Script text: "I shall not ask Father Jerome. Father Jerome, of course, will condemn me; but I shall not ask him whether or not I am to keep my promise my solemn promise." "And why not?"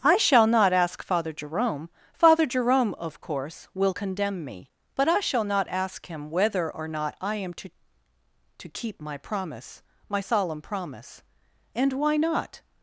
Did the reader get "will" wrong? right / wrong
right